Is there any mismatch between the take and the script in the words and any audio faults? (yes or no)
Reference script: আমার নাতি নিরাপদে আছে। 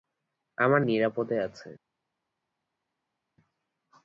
yes